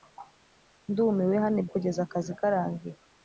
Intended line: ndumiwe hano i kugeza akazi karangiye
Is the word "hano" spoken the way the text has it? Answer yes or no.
yes